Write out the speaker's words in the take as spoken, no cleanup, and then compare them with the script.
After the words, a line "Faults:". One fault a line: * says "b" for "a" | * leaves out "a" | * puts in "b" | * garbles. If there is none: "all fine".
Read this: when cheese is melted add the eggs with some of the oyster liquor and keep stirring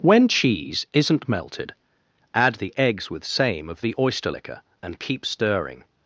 when cheese isn't melted add the eggs with same of the oyster liquor and keep stirring
Faults:
* says "isn't" for "is"
* says "same" for "some"